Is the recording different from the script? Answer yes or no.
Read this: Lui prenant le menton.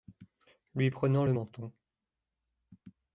no